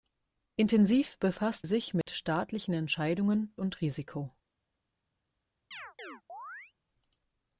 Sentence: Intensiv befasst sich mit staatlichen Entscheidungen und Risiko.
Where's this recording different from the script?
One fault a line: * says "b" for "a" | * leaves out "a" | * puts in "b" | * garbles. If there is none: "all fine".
all fine